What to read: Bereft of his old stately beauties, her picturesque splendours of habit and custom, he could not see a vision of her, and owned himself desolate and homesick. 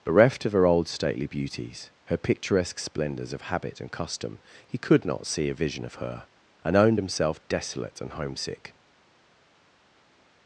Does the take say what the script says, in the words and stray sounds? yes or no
no